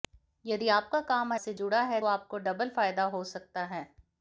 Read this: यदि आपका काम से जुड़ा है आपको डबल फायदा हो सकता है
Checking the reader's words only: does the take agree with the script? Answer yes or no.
yes